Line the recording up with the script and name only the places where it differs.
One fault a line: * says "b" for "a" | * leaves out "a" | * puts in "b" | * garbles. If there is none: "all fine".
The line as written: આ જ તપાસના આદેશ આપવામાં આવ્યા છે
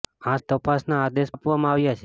all fine